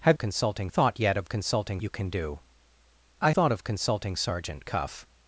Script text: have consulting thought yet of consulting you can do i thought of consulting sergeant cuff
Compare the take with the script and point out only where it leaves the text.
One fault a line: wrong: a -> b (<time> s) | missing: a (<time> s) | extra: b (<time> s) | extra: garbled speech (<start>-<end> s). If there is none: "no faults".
no faults